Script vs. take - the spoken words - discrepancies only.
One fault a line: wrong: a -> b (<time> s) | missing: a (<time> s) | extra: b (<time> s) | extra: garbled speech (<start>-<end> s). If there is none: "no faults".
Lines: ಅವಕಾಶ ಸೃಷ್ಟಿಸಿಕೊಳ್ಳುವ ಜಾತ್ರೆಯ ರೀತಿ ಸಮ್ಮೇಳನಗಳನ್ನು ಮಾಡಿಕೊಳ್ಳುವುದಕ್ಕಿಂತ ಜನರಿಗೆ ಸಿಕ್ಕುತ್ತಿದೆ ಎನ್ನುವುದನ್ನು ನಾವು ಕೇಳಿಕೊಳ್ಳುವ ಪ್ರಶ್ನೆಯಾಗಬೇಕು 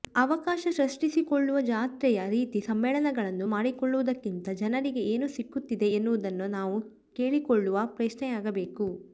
extra: ಏನು (5.1 s)